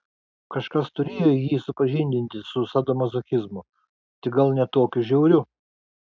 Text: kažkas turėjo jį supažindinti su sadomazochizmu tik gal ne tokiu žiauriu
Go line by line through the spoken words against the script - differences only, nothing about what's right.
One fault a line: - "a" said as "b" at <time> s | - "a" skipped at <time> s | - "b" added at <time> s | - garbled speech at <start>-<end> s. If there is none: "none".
none